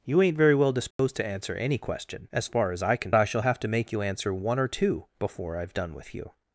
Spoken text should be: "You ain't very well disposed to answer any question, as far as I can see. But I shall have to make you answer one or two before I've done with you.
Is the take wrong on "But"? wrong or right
wrong